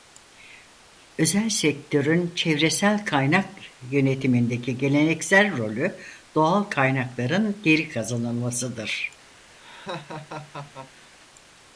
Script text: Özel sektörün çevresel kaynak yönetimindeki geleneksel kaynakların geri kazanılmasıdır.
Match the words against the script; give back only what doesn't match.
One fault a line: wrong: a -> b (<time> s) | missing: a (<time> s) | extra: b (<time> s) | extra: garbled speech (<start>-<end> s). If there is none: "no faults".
extra: rolü doğal (5.6 s)